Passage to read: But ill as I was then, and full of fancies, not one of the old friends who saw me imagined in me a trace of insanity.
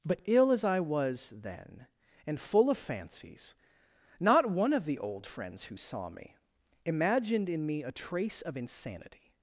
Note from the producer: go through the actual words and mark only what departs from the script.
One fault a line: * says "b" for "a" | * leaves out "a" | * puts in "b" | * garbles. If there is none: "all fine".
all fine